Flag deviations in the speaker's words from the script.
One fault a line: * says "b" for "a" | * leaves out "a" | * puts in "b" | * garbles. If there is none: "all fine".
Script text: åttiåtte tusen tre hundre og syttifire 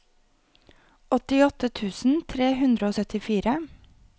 all fine